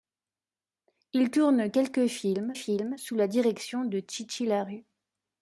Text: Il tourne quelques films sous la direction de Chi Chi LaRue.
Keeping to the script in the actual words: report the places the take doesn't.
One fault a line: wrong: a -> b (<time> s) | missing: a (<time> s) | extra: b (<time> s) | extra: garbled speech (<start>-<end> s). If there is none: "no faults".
extra: films (2.5 s)